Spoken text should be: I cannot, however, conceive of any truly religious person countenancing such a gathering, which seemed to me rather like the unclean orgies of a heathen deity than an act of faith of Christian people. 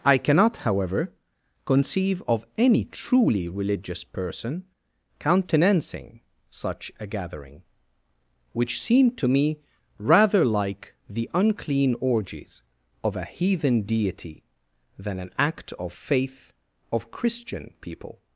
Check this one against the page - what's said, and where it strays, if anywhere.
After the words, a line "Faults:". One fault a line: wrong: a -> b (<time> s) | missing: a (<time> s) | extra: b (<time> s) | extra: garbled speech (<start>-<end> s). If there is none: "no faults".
I cannot, however, conceive of any truly religious person countenancing such a gathering, which seemed to me rather like the unclean orgies of a heathen deity than an act of faith of Christian people.
Faults:
no faults